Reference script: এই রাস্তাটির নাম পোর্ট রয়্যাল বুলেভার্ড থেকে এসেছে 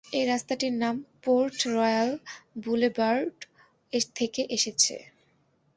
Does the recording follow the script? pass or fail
pass